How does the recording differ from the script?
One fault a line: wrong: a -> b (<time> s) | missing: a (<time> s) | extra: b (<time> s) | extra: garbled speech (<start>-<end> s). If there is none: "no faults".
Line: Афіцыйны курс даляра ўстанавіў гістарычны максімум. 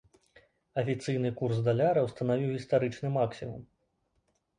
no faults